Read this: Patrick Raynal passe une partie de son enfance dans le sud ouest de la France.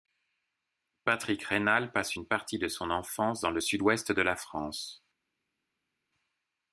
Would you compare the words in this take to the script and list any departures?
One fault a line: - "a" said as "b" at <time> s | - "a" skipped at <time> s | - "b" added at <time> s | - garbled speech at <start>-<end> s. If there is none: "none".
none